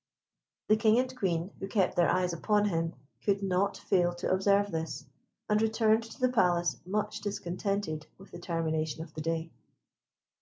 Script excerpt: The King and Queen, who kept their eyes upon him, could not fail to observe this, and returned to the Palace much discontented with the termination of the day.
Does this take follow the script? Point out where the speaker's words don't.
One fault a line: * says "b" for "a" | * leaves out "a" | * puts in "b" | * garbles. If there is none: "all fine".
all fine